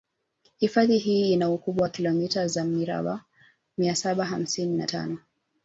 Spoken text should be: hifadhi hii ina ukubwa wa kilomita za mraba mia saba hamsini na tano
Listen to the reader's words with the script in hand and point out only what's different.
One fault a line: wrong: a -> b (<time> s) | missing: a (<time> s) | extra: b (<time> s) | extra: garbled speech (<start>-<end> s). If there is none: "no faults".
no faults